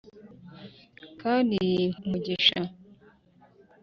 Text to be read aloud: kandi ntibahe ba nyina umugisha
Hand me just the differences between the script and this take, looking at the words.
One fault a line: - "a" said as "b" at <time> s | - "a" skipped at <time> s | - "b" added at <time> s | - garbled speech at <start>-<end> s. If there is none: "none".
- "ntibahe ba nyina" skipped at 1.6 s